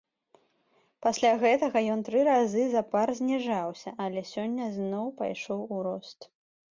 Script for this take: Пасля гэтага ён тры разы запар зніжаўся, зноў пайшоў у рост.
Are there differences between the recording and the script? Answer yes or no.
yes